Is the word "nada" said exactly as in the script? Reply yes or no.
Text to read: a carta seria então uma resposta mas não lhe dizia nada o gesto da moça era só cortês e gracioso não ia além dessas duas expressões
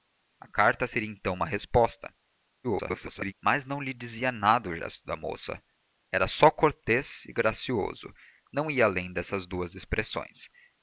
yes